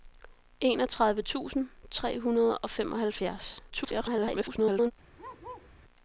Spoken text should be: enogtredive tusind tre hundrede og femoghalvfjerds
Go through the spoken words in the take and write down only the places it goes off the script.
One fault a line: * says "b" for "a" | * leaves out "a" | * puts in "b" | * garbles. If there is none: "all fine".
* garbles